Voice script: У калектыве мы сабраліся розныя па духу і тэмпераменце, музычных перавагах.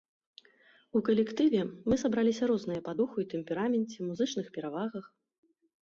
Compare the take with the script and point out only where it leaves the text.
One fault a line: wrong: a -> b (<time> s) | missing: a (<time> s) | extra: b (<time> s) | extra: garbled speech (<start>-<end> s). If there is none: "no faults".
no faults